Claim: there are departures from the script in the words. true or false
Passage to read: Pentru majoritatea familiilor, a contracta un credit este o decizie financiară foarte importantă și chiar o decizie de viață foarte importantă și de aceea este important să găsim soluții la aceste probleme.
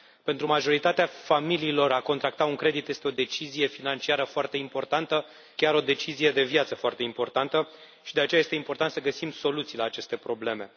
true